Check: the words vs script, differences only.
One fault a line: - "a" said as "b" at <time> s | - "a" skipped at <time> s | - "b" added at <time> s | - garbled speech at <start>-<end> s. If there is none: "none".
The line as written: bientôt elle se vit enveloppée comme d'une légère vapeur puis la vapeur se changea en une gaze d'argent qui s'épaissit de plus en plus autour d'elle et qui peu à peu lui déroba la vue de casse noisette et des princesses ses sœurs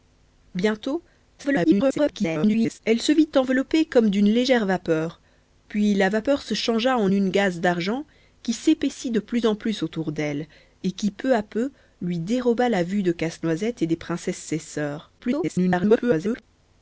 - garbled speech at 1.4-2.8 s
- garbled speech at 15.2-16.4 s